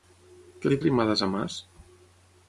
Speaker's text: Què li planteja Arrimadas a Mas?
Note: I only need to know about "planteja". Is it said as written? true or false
false